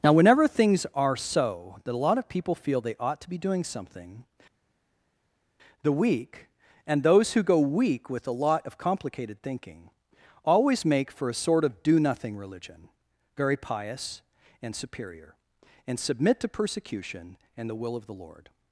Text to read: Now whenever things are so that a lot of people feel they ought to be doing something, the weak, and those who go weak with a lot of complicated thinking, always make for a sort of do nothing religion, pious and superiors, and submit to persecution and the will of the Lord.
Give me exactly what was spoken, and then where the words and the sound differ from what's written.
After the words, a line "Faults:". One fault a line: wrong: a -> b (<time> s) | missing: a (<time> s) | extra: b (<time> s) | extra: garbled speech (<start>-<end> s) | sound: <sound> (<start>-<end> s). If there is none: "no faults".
Now whenever things are so that a lot of people feel they ought to be doing something, the weak, and those who go weak with a lot of complicated thinking, always make for a sort of do nothing religion, very pious and superior, and submit to persecution and the will of the Lord.
Faults:
extra: very (13.4 s)
wrong: superiors -> superior (14.7 s)